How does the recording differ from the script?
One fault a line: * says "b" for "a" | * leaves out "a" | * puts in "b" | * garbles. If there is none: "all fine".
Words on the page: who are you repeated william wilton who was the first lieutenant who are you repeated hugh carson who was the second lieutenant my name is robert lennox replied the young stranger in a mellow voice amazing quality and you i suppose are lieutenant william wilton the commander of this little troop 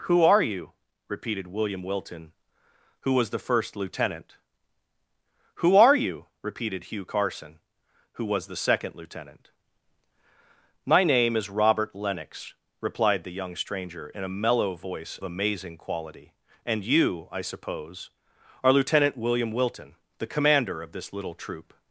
all fine